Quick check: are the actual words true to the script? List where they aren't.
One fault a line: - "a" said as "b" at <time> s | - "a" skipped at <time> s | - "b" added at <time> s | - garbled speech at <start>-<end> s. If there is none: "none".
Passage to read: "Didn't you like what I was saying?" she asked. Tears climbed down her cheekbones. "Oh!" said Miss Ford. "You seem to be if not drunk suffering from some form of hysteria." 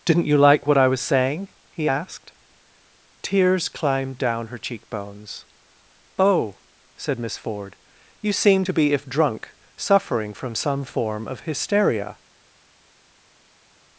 - "she" said as "he" at 1.7 s
- "not" skipped at 9.1 s